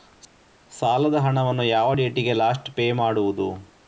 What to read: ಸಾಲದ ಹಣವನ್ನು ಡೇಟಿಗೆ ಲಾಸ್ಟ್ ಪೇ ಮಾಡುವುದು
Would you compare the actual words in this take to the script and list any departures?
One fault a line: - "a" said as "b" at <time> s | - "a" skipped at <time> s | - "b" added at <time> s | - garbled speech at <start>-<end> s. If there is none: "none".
- "ಯಾವ" added at 1.7 s